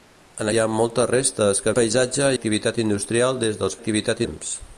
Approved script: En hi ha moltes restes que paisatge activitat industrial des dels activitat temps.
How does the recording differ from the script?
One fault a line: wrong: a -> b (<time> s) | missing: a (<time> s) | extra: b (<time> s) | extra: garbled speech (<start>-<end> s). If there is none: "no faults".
no faults